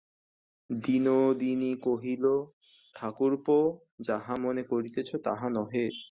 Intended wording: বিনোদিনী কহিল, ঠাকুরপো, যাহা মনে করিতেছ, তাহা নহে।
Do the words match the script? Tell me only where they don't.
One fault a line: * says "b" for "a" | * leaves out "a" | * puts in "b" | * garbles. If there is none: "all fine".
all fine